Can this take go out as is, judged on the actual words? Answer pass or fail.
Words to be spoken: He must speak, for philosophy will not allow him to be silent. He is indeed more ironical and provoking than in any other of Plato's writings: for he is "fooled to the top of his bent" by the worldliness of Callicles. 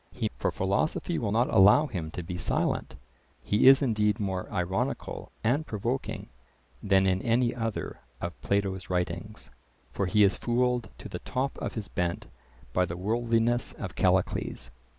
fail